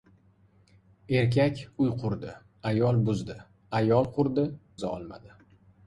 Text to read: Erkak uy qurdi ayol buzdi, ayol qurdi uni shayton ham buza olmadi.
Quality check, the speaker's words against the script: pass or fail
fail